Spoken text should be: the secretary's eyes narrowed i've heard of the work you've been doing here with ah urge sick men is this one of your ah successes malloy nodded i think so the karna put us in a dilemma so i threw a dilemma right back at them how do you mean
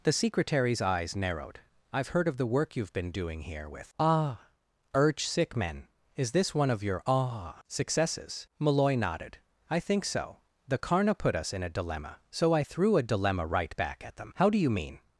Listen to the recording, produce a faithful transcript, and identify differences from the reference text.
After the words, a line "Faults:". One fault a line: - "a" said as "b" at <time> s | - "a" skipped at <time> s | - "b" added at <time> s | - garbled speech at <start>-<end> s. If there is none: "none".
the secretary's eyes narrowed i've heard of the work you've been doing here with ah urge sick men is this one of your ah successes malloy nodded i think so the karna put us in a dilemma so i threw a dilemma right back at them how do you mean
Faults:
none